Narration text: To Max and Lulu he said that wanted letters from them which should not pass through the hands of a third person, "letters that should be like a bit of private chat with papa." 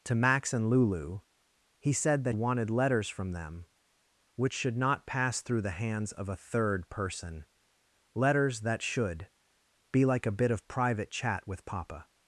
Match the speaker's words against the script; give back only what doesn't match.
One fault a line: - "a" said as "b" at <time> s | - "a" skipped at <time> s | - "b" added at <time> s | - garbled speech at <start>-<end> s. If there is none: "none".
none